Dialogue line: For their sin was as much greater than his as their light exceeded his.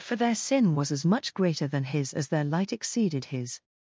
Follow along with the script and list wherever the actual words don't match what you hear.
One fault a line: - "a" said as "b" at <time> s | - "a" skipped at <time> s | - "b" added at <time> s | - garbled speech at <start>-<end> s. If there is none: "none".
none